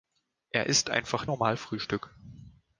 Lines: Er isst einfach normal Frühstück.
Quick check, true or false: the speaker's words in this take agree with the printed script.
true